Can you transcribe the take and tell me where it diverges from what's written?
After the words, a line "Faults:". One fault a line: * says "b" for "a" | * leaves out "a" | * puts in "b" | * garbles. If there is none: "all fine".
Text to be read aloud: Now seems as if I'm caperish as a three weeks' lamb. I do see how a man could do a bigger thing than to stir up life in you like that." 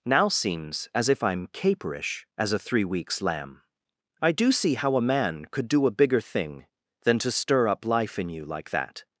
Now seems as if I'm caperish as a three weeks' lamb. I do see how a man could do a bigger thing than to stir up life in you like that."
Faults:
all fine